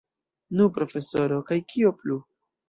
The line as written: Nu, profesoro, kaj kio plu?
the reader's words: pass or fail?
pass